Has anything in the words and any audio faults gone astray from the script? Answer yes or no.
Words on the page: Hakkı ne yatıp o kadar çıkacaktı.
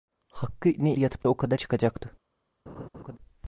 yes